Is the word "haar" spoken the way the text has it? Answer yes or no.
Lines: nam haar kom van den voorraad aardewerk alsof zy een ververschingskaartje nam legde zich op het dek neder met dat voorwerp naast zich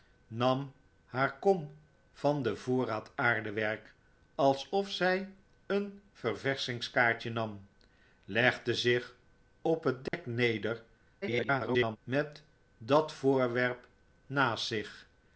yes